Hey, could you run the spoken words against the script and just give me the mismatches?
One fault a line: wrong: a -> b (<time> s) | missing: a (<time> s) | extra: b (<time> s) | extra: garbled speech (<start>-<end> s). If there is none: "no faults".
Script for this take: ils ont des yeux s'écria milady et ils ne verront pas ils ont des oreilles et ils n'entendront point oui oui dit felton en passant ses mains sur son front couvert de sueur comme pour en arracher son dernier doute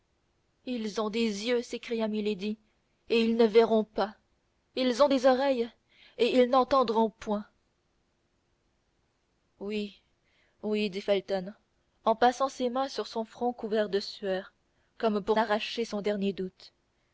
missing: en (15.4 s)